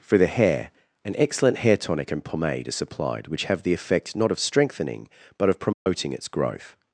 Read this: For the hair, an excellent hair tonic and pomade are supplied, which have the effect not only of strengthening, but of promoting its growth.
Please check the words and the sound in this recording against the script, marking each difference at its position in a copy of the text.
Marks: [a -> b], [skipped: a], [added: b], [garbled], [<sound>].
For the hair, an excellent hair tonic and pomade are supplied, which have the effect not [skipped: only] of strengthening, but of promoting [dropout] its growth.